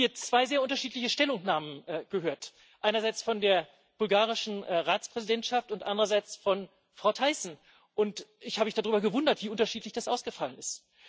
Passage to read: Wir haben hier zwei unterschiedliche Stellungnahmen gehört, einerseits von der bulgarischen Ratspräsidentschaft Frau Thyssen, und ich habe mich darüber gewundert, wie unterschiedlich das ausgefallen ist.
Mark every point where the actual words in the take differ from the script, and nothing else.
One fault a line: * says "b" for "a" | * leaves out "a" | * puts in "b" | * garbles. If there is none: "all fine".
* puts in "sehr"
* puts in "und andererseits von"